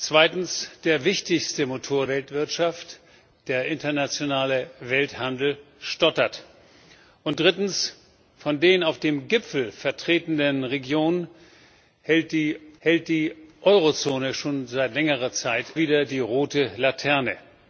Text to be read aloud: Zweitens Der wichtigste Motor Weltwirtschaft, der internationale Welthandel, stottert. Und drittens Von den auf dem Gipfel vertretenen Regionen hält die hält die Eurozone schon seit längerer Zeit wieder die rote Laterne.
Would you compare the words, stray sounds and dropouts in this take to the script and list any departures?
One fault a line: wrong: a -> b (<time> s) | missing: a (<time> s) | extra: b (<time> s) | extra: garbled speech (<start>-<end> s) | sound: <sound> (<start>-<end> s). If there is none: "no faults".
no faults